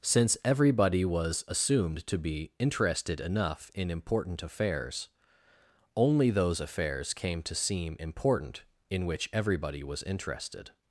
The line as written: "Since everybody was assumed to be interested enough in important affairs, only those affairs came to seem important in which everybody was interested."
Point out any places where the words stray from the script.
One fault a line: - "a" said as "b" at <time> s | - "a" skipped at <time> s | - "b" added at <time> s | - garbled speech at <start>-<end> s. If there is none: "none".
none